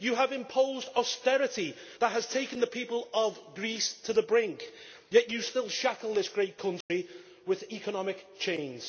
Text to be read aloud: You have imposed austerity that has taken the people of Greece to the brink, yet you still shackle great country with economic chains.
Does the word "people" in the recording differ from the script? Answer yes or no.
no